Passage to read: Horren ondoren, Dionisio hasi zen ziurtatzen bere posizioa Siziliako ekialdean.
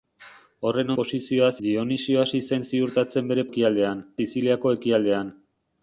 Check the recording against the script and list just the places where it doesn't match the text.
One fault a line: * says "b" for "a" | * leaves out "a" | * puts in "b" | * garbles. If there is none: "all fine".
* says "posizioa" for "ondoren"
* says "ekialdean" for "posizioa"